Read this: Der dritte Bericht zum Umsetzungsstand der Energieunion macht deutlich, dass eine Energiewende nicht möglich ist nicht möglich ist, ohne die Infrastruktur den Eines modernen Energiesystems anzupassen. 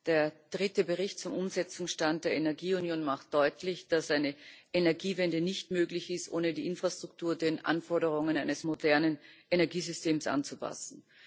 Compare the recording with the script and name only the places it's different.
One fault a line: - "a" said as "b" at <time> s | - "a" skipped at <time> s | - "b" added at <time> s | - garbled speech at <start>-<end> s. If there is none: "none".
- "nicht möglich ist" skipped at 6.3 s
- "Anforderungen" added at 7.7 s